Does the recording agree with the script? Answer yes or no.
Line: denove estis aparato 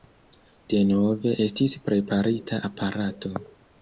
no